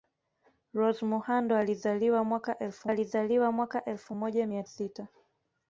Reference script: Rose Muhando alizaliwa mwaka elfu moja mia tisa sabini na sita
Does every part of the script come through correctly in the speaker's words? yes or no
no